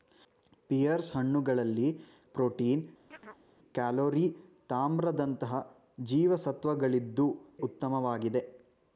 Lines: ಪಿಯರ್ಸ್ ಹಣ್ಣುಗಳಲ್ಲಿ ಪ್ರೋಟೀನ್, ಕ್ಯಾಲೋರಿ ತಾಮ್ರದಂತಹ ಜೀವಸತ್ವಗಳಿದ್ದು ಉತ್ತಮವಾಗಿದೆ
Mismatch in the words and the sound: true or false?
true